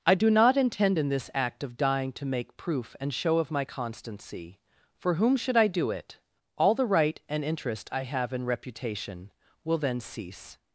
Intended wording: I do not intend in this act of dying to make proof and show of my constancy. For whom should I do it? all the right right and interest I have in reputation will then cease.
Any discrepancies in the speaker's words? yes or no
yes